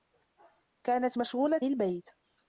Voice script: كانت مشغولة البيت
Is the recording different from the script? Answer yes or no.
no